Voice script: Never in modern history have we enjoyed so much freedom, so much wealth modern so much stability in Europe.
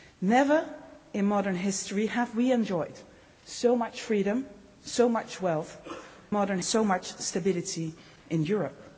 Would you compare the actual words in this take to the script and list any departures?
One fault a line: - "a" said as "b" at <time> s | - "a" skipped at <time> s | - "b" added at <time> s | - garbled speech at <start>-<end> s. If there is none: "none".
none